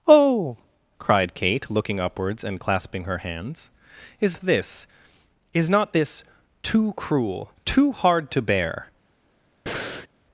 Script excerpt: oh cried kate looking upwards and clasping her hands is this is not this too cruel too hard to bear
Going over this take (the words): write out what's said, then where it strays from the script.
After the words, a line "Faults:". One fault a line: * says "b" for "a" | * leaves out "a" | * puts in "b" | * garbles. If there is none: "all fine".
oh cried kate looking upwards and clasping her hands is this is not this too cruel too hard to bear
Faults:
all fine